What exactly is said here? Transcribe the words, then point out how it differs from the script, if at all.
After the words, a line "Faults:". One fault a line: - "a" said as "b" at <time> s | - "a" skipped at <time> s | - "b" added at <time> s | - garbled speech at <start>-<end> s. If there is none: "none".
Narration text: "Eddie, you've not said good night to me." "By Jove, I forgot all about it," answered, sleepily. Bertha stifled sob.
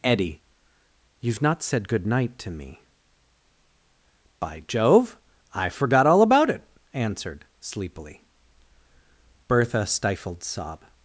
"Eddie, you've not said good night to me." "By Jove, I forgot all about it," answered, sleepily. Bertha stifled sob.
Faults:
none